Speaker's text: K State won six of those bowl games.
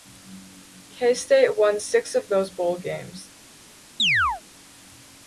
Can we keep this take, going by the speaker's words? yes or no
yes